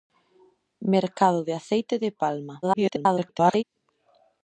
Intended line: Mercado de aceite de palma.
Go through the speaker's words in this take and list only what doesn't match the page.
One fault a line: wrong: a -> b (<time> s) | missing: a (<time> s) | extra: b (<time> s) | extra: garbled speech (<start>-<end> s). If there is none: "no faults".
extra: garbled speech (2.6-3.6 s)